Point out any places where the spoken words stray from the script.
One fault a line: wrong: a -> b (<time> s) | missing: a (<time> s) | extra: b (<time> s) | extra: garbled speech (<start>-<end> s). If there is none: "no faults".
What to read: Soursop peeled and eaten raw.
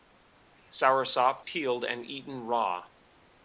no faults